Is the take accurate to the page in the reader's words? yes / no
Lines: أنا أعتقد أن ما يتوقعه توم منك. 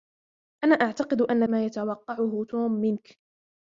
yes